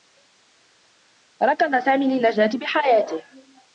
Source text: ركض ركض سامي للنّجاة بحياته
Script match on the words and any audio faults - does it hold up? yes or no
no